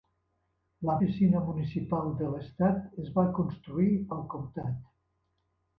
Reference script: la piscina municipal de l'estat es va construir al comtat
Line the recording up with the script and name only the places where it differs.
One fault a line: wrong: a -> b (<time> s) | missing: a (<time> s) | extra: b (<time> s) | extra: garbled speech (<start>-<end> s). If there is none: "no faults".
no faults